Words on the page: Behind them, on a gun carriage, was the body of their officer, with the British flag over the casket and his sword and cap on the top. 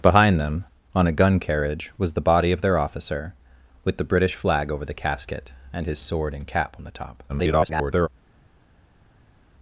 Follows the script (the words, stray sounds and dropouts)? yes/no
no